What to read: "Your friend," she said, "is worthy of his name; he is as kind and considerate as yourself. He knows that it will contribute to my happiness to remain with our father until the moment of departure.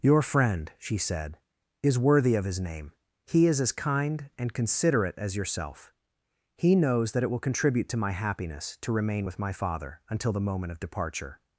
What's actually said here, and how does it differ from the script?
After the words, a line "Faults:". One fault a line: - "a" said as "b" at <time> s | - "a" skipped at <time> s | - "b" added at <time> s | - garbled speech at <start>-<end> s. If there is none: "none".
"Your friend," she said, "is worthy of his name; he is as kind and considerate as yourself. He knows that it will contribute to my happiness to remain with my father until the moment of departure.
Faults:
- "our" said as "my" at 9.4 s